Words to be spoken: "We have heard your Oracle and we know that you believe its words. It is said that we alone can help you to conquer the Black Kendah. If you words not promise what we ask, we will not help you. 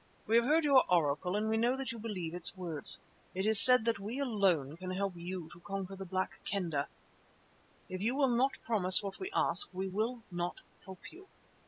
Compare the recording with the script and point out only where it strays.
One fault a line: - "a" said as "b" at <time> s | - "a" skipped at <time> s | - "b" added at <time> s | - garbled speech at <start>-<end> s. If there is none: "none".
- "words" said as "will" at 8.2 s